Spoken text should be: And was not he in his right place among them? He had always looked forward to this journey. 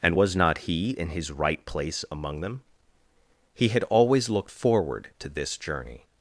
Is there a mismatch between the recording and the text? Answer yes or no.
no